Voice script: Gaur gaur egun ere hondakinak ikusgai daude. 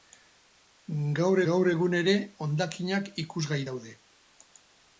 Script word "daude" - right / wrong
right